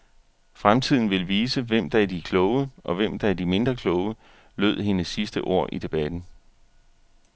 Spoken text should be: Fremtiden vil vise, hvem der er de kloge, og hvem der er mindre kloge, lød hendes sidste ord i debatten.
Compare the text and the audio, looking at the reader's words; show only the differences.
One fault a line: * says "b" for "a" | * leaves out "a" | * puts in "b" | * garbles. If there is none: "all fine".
* puts in "de"